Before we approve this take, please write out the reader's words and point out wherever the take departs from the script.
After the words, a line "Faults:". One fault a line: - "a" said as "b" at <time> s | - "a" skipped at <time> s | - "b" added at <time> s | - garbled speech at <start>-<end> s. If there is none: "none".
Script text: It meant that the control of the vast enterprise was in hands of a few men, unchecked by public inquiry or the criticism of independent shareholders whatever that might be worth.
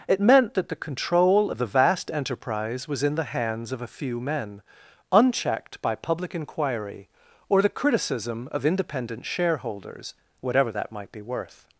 It meant that the control of the vast enterprise was in the hands of a few men, unchecked by public inquiry or the criticism of independent shareholders whatever that might be worth.
Faults:
- "the" added at 3.1 s